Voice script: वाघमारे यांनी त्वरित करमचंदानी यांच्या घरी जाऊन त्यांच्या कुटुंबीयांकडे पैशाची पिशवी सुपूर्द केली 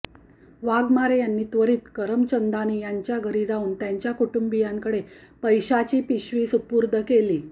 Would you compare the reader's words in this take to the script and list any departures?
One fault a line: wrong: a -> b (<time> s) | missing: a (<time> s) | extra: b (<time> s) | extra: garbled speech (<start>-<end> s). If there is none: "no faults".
no faults